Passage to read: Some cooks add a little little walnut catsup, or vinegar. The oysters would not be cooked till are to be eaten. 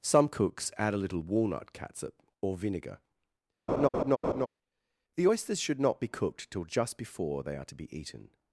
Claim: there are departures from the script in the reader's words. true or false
true